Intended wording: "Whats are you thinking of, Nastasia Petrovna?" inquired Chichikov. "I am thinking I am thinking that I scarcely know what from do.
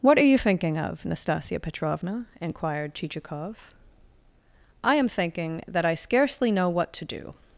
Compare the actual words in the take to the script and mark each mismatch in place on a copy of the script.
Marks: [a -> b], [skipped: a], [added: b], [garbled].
["Whats -> What] are you thinking of, Nastasia Petrovna?" inquired Chichikov. "I am thinking [skipped: I am thinking] that I scarcely know what [from -> to] do.